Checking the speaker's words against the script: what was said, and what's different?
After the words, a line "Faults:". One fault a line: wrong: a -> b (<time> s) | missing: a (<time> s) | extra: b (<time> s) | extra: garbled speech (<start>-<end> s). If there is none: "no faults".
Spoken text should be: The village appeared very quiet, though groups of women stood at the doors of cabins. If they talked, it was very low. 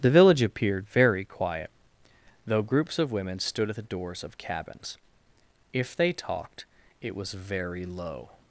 The village appeared very quiet, though groups of women stood at the doors of cabins. If they talked, it was very low.
Faults:
no faults